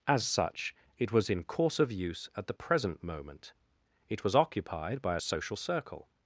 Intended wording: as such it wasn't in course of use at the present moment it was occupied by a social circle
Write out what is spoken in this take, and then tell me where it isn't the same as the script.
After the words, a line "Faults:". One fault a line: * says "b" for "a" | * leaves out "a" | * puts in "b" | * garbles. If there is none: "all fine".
as such it was in course of use at the present moment it was occupied by a social circle
Faults:
* says "was" for "wasn't"